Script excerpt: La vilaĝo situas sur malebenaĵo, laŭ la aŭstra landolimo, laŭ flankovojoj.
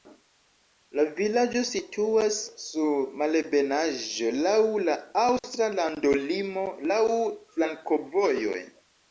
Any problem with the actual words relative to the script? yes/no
no